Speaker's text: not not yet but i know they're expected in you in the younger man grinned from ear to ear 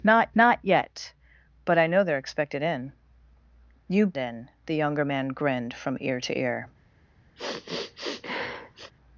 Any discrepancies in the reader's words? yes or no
no